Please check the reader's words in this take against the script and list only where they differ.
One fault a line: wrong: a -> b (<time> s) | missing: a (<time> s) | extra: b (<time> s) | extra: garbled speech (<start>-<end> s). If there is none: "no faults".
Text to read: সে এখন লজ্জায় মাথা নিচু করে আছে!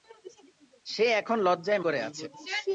missing: মাথা নিচু (1.8 s)